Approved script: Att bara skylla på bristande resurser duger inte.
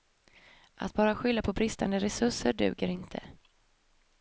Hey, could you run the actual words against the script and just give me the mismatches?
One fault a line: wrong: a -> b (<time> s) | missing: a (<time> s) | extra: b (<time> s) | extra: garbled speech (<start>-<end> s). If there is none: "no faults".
no faults